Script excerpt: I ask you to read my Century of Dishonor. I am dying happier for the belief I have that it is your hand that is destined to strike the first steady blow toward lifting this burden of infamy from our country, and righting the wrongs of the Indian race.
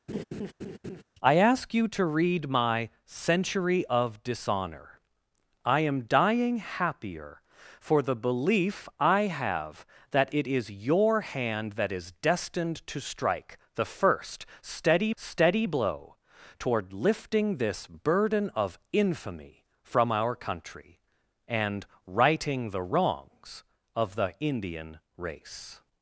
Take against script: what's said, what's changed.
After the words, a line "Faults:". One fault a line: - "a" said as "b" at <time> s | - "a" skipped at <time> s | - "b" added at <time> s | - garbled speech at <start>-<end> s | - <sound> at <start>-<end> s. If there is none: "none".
I ask you to read my Century of Dishonor. I am dying happier for the belief I have that it is your hand that is destined to strike the first steady steady blow toward lifting this burden of infamy from our country, and righting the wrongs of the Indian race.
Faults:
- laugh at 0.1-1.0 s
- "steady" added at 15.2 s